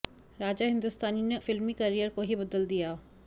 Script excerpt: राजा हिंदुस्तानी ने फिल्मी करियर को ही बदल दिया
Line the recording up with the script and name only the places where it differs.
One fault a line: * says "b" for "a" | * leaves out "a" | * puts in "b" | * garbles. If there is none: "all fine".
all fine